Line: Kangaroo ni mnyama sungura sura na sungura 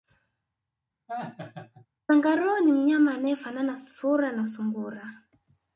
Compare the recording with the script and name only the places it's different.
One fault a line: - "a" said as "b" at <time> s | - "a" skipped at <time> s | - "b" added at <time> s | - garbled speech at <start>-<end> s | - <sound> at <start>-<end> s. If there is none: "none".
- laugh at 1.1-1.9 s
- "sungura" said as "anayefanana" at 3.1 s